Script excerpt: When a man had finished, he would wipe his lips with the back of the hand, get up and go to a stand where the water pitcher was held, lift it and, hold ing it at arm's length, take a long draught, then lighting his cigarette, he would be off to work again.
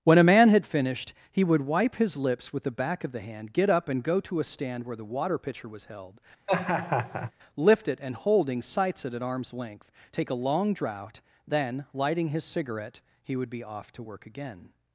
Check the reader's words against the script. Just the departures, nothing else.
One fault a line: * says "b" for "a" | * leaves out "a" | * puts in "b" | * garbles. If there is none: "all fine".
* says "holding sights" for "hold ing"